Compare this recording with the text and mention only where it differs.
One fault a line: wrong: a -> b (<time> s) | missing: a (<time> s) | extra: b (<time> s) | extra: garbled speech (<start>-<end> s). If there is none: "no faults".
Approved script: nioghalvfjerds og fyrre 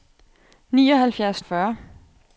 no faults